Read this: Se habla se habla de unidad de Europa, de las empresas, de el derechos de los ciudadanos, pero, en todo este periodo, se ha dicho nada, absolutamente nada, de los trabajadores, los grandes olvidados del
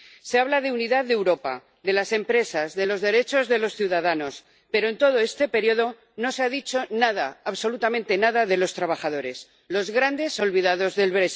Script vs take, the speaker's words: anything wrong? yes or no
yes